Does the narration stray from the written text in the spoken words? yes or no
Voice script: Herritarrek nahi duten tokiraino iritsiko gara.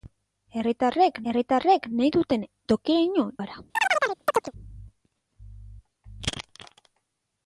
yes